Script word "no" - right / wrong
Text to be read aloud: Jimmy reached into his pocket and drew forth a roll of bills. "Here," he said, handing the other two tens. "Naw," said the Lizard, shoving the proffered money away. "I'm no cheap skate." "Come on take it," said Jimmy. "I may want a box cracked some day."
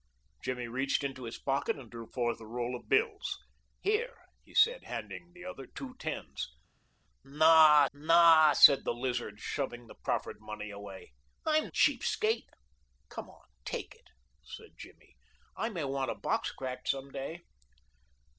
wrong